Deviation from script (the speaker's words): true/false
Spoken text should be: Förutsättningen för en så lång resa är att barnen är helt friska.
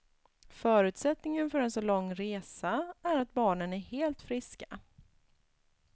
false